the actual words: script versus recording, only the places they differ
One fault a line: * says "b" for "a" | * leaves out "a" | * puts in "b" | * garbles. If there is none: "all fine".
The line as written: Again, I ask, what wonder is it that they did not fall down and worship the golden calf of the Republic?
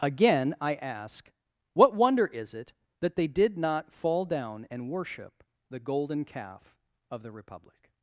all fine